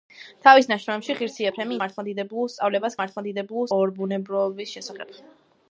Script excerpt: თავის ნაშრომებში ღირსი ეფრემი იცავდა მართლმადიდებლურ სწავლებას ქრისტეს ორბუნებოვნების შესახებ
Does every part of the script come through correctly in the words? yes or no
no